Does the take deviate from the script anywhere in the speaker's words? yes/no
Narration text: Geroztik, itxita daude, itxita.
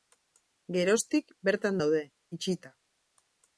yes